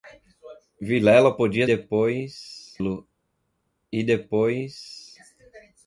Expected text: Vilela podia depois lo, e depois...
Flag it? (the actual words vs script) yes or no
no